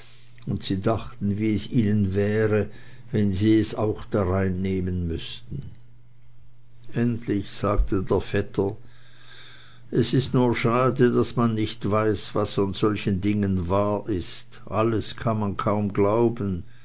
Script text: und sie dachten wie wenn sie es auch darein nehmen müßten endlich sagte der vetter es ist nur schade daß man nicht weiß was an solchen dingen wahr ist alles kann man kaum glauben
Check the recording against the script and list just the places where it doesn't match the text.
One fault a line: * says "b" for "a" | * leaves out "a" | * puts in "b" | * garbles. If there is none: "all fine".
* puts in "es ihnen wäre"